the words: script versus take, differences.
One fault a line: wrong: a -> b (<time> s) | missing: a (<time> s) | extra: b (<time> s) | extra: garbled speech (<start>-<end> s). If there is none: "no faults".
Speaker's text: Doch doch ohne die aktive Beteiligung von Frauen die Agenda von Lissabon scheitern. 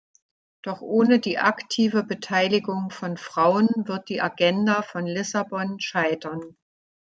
missing: doch (0.8 s)
extra: wird (3.9 s)